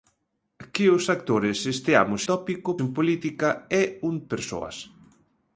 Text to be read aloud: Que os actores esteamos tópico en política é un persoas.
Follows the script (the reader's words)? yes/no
yes